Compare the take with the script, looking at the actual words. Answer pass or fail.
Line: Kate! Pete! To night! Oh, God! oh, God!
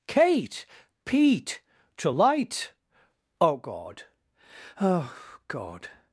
fail